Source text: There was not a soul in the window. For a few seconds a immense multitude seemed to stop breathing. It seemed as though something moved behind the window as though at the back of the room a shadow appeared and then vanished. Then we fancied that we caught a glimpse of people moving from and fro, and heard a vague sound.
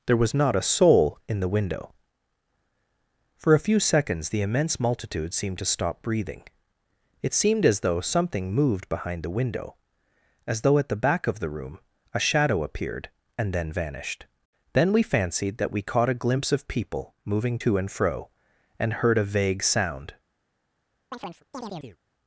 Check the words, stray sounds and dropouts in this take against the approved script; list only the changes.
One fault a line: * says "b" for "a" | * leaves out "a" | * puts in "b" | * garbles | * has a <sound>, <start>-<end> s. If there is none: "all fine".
* says "the" for "a"
* says "to" for "from"
* has a chirp, 21.1-22.0 s